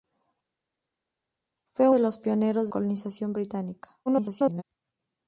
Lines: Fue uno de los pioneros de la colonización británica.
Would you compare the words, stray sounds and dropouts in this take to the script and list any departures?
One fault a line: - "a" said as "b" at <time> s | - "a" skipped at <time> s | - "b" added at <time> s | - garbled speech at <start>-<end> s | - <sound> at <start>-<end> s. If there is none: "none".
- "uno" skipped at 1.9 s
- "de la" skipped at 2.7 s
- garbled speech at 4.1-4.6 s